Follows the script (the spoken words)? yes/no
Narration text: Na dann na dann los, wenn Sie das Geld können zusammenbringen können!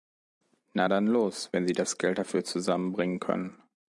no